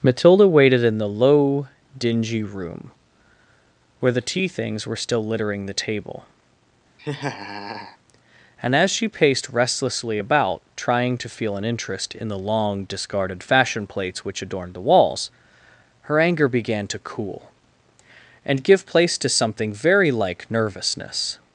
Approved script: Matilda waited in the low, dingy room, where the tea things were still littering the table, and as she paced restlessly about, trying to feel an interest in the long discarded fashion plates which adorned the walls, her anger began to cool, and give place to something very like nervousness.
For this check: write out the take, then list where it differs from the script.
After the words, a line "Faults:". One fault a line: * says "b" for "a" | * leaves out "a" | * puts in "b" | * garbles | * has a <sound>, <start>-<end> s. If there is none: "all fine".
Matilda waited in the low, dingy room, where the tea things were still littering the table, and as she paced restlessly about, trying to feel an interest in the long discarded fashion plates which adorned the walls, her anger began to cool, and give place to something very like nervousness.
Faults:
* has a laugh, 7.0-8.0 s